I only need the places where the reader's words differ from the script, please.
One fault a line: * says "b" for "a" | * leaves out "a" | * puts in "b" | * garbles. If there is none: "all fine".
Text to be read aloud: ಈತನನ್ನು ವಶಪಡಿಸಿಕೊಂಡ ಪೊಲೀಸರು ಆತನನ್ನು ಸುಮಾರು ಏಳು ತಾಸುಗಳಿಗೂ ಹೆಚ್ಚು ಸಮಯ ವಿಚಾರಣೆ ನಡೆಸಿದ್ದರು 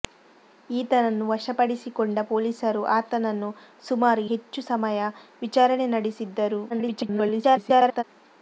* leaves out "ಏಳು ತಾಸುಗಳಿಗೂ"
* garbles